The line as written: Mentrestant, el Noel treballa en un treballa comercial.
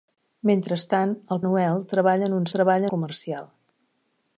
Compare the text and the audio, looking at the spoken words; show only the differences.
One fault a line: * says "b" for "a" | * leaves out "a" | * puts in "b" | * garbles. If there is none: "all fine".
all fine